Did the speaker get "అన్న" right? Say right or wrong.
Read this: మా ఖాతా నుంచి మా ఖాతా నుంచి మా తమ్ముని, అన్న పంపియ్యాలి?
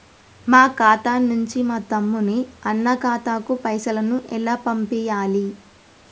wrong